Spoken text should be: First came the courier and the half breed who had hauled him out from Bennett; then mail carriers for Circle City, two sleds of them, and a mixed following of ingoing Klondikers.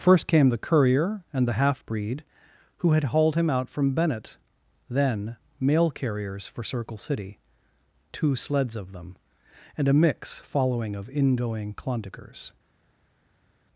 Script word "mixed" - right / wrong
wrong